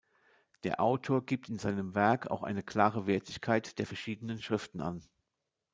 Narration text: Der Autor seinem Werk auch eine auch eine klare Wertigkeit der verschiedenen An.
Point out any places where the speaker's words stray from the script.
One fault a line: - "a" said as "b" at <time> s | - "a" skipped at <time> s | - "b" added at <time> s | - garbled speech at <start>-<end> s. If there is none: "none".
- "gibt in" added at 1.3 s
- "auch eine" skipped at 2.6 s
- "Schriften" added at 4.4 s